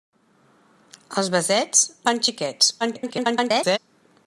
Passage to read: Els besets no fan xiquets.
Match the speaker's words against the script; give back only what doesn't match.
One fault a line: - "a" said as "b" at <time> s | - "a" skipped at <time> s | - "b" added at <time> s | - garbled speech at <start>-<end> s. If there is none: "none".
- "no" skipped at 1.9 s
- garbled speech at 2.8-3.8 s